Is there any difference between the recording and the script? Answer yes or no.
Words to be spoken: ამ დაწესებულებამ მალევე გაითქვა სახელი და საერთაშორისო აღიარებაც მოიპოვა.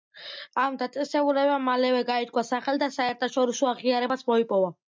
no